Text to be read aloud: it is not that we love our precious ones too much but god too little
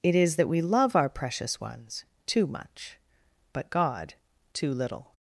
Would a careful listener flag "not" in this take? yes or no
yes